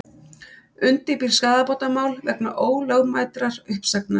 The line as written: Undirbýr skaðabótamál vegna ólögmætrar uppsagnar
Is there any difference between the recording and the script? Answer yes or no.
no